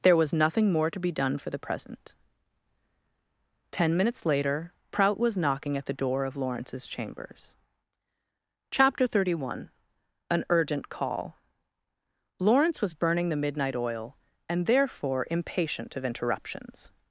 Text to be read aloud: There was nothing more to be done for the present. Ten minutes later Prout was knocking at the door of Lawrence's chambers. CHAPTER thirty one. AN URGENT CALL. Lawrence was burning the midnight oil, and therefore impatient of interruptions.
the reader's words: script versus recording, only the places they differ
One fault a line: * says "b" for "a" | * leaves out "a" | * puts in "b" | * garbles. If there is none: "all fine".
all fine